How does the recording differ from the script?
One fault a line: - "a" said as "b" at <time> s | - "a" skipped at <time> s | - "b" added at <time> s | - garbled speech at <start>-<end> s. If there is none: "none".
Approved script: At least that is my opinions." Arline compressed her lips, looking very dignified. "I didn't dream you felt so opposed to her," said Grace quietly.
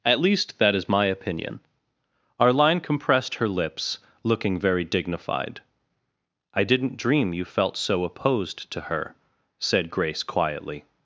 - "opinions" said as "opinion" at 1.1 s